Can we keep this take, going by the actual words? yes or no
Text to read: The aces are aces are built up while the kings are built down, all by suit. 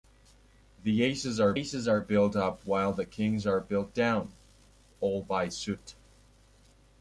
yes